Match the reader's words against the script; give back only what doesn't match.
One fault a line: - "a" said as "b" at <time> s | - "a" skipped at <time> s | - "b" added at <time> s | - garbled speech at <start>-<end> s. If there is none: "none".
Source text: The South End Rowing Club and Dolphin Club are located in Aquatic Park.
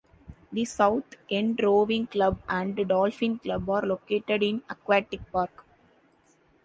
none